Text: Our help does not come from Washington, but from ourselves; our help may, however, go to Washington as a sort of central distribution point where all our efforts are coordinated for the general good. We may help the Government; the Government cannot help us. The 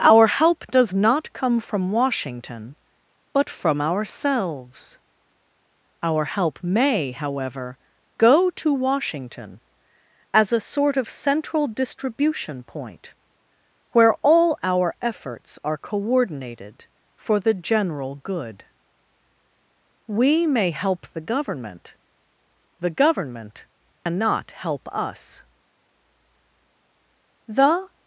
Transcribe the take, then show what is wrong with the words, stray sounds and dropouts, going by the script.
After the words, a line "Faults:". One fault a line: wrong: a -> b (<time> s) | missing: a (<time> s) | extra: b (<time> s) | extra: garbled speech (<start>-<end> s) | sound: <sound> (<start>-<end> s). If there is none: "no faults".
Our help does not come from Washington, but from ourselves; our help may, however, go to Washington as a sort of central distribution point where all our efforts are coordinated for the general good. We may help the Government; the Government cannot help us. The
Faults:
sound: dropout (23.9-24.1 s)